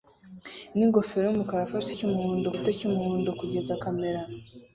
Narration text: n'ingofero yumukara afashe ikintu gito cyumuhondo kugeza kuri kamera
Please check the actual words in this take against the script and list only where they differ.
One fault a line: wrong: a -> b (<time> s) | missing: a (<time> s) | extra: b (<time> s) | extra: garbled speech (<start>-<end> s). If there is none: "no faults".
wrong: ikintu -> cyumuhondo (2.0 s)
missing: kuri (3.7 s)